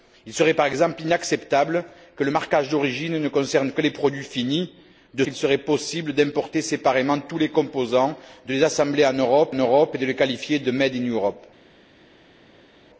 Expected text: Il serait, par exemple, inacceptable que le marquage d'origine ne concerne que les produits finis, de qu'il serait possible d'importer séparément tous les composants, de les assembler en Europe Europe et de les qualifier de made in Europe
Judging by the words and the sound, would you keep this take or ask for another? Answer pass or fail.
pass